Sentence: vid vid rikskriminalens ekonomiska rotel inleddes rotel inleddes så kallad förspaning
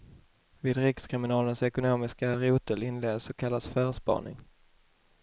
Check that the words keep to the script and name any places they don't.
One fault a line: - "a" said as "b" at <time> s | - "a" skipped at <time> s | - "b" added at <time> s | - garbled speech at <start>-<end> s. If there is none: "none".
- "vid" skipped at 0.8 s
- "rotel inleddes" skipped at 3.2 s